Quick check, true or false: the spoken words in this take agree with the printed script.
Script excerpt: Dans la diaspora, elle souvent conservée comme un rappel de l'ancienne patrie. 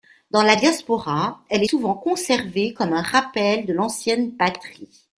true